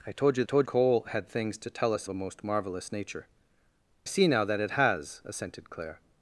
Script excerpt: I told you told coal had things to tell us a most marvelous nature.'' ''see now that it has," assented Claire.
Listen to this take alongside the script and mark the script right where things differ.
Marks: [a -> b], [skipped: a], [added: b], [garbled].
I told you told coal had things to tell us a most marvelous nature.'' ''see now that it has," assented Claire.